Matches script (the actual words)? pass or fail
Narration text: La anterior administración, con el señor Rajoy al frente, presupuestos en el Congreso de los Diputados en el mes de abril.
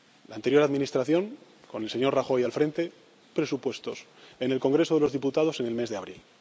pass